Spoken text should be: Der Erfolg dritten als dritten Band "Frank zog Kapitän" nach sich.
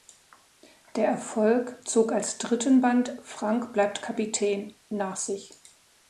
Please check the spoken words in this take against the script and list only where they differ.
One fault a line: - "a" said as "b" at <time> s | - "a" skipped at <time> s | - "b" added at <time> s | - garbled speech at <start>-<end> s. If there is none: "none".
- "dritten" said as "zog" at 1.9 s
- "zog" said as "bleibt" at 3.7 s